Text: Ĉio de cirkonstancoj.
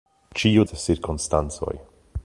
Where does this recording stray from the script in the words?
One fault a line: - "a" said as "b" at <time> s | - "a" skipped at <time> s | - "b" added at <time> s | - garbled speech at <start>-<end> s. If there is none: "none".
none